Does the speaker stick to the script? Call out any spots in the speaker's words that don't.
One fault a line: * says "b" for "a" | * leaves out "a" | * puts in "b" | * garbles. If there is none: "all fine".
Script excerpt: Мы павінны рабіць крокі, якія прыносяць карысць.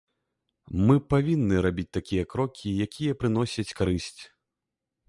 * puts in "такія"